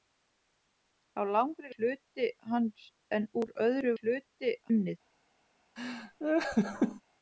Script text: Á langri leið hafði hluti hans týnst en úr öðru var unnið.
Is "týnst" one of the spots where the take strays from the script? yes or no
yes